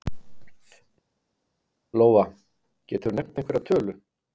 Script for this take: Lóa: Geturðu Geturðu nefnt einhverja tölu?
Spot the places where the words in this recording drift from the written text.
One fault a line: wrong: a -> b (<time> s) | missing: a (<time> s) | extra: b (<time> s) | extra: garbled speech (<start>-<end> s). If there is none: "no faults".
missing: Geturðu (3.2 s)